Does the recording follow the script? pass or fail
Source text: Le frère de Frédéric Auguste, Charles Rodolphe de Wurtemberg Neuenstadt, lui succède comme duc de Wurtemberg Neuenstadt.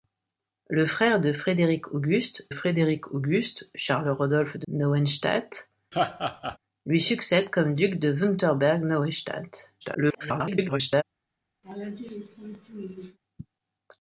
fail